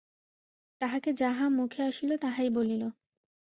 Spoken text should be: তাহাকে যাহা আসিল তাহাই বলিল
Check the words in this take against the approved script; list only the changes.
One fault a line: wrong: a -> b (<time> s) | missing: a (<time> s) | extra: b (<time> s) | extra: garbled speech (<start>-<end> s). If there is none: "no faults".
extra: মুখে (1.5 s)